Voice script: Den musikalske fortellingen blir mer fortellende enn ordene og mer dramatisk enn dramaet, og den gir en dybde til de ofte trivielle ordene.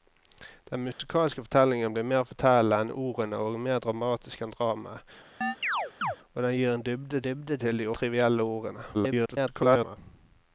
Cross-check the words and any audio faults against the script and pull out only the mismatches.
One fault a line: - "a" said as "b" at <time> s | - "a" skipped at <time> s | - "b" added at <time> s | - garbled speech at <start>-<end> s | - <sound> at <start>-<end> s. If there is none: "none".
- dropout at 0.9-1.0 s
- chirp at 5.4-6.2 s
- "dybde" added at 7.3 s
- "ofte" skipped at 7.9 s
- garbled speech at 8.9-10.0 s